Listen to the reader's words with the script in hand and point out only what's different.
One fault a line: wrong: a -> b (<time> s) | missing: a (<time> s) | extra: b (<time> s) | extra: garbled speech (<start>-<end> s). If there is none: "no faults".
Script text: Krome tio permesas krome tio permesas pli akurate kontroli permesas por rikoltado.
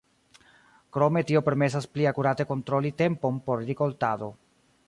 missing: krome tio permesas (1.9 s)
wrong: permesas -> tempon (3.0 s)